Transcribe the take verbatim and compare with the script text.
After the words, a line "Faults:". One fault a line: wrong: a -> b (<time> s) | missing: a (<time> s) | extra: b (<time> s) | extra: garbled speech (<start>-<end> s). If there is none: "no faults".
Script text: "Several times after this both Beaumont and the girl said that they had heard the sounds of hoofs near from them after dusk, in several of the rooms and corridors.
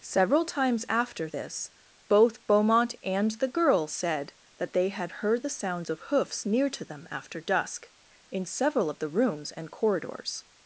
"Several times after this both Beaumont and the girl said that they had heard the sounds of hoofs near to them after dusk, in several of the rooms and corridors.
Faults:
wrong: from -> to (6.7 s)